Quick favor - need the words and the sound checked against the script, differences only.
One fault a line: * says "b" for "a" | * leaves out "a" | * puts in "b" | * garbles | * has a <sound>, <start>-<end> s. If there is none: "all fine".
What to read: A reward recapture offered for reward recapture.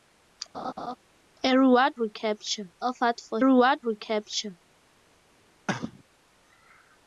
* has a laugh, 0.5-1.0 s
* has a cough, 5.7-6.0 s